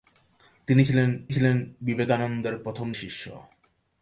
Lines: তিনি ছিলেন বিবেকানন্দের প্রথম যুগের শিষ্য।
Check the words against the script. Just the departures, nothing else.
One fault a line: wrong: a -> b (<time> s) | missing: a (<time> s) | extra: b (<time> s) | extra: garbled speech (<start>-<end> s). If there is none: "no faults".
extra: ছিলেন (1.3 s)
missing: যুগের (2.9 s)